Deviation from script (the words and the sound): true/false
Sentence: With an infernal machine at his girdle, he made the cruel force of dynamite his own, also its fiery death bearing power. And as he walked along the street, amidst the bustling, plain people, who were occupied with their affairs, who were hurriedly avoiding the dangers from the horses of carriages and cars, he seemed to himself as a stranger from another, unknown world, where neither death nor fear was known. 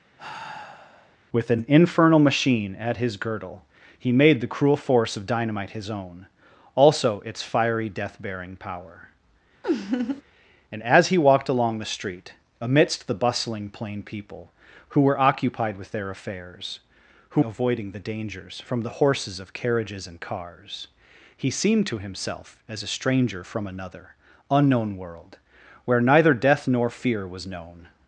true